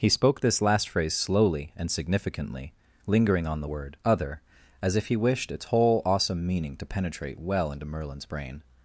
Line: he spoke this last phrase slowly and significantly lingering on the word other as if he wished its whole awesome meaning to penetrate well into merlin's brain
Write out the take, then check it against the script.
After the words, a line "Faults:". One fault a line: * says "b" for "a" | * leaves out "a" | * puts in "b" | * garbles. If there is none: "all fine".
he spoke this last phrase slowly and significantly lingering on the word other as if he wished its whole awesome meaning to penetrate well into merlin's brain
Faults:
all fine